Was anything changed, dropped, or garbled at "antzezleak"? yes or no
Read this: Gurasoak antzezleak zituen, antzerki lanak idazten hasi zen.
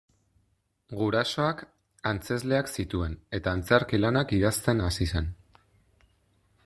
no